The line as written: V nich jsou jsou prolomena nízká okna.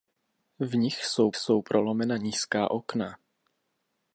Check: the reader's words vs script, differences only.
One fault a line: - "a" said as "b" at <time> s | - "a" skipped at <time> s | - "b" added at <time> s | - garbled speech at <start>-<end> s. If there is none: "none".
none